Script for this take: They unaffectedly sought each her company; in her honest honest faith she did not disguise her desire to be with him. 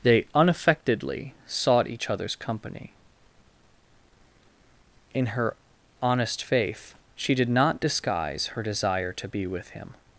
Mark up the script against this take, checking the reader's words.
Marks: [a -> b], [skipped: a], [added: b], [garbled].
They unaffectedly sought each [her -> other's] company; in her honest [skipped: honest] faith she did not disguise her desire to be with him.